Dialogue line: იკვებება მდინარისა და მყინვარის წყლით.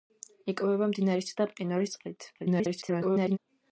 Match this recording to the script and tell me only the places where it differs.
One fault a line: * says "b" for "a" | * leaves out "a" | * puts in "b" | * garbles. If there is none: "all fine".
* garbles